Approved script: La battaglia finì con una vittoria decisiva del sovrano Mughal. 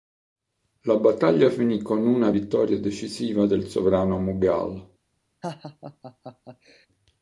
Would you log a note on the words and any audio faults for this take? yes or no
yes